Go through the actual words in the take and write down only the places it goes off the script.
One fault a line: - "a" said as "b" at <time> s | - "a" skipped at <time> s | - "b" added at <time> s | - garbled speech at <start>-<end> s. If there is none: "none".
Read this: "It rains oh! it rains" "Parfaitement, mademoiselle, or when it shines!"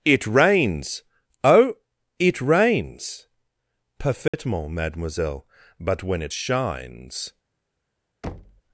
- "or" said as "but" at 5.8 s